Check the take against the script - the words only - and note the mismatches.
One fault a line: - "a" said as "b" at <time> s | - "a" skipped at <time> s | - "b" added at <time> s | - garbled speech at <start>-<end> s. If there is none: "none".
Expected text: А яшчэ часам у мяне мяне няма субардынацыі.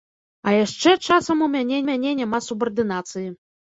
none